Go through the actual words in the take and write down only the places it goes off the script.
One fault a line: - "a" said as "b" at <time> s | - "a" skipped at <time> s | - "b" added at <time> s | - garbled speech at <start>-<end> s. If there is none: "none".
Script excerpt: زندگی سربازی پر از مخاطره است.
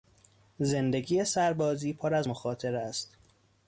none